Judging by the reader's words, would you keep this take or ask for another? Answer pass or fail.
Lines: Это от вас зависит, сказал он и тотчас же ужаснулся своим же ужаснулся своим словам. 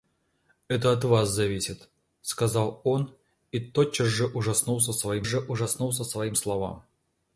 pass